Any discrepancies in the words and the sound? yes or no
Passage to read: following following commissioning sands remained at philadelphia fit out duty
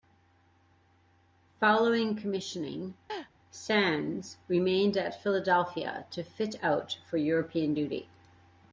yes